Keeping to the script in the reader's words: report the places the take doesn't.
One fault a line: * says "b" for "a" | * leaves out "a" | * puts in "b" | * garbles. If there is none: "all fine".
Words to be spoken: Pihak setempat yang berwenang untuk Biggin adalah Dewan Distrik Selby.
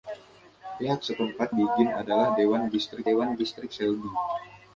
* says "Biggin adalah Dewan Distrik" for "yang berwenang untuk Biggin adalah"